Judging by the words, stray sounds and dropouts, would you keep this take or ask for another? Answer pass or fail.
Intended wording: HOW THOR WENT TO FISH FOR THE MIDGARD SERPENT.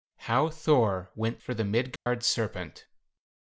fail